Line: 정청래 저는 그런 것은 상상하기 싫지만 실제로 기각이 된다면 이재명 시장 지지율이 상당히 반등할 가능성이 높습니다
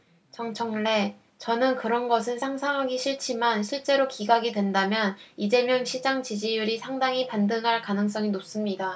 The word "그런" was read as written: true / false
true